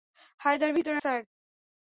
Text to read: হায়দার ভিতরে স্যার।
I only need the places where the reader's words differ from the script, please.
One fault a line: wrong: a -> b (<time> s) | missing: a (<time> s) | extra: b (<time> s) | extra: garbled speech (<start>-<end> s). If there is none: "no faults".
no faults